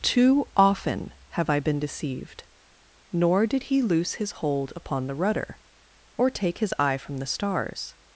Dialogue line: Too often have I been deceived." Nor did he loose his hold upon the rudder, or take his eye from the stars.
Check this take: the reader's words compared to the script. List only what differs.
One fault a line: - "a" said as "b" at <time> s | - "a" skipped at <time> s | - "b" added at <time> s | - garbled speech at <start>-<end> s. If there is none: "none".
none